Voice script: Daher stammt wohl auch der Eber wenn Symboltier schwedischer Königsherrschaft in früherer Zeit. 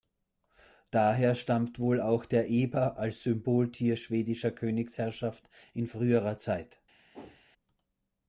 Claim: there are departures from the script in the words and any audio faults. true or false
true